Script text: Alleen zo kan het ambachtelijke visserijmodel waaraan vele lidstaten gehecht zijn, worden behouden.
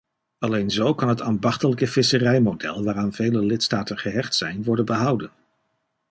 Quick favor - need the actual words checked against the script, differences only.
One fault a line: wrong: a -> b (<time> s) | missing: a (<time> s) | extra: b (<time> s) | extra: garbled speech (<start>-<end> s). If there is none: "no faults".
no faults